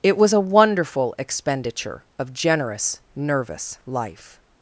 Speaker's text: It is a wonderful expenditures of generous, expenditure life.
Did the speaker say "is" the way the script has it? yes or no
no